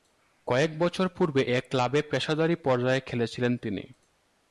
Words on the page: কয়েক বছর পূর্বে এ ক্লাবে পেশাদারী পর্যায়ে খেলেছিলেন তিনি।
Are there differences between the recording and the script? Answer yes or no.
no